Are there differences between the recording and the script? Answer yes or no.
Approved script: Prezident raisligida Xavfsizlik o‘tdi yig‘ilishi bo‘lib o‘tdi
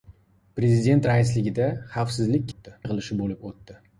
no